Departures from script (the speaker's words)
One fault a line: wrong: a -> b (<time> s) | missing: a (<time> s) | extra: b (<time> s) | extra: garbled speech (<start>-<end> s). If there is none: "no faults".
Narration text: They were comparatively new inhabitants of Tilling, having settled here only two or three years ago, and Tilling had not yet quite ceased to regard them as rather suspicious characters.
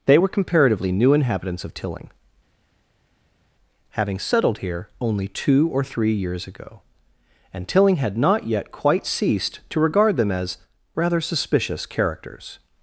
no faults